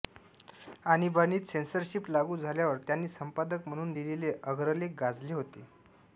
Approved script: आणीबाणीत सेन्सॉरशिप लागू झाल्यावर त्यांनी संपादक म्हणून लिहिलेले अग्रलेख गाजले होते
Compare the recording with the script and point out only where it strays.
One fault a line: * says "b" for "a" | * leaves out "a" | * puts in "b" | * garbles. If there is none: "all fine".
all fine